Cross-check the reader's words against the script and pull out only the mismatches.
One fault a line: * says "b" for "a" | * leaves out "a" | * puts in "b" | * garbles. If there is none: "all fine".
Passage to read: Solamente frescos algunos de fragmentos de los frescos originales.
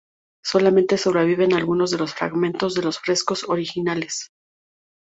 * says "sobreviven" for "frescos"
* puts in "los"